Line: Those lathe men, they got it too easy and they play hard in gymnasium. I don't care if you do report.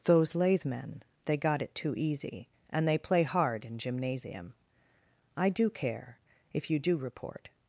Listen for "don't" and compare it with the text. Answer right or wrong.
wrong